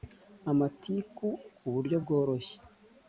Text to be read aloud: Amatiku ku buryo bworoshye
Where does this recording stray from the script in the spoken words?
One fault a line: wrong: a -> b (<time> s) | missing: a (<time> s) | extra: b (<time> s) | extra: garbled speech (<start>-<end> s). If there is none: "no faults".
no faults